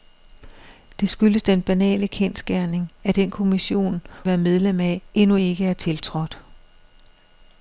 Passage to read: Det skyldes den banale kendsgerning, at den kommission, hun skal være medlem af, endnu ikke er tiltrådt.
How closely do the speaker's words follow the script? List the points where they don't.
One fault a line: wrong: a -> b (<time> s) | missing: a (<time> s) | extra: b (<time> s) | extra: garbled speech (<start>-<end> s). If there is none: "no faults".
missing: hun skal (4.0 s)